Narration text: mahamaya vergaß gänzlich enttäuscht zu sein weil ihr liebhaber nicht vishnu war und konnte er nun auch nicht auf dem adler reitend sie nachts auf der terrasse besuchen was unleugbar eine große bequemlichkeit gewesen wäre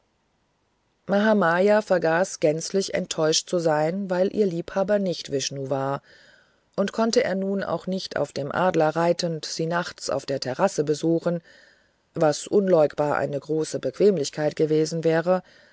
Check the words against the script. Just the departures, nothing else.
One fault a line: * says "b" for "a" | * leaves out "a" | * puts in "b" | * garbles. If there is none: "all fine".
all fine